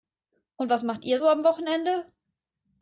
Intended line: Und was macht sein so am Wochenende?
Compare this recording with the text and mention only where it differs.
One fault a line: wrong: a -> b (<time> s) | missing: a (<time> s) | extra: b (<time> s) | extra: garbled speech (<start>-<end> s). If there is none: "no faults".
wrong: sein -> ihr (1.0 s)